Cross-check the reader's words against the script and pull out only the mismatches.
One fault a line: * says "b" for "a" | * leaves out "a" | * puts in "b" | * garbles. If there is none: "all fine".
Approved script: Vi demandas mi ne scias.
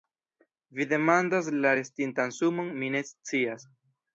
* puts in "la restintan sumon"